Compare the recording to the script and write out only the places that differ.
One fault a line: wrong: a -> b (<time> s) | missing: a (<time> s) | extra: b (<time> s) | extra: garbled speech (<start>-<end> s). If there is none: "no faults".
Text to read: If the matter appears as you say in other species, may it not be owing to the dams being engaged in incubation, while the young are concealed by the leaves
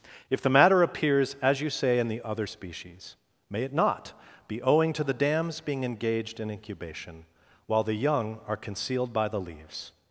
extra: the (2.1 s)